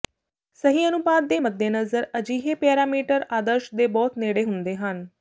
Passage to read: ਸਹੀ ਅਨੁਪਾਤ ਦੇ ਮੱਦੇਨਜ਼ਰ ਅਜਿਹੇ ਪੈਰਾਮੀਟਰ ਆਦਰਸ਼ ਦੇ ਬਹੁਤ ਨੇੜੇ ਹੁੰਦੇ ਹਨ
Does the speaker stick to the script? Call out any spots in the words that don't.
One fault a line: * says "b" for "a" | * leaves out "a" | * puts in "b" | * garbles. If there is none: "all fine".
all fine